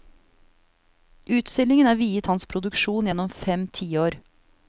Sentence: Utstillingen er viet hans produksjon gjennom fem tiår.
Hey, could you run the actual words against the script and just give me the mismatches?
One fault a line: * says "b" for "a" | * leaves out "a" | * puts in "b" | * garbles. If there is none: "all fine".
all fine